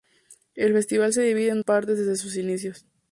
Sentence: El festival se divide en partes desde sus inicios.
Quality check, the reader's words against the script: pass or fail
pass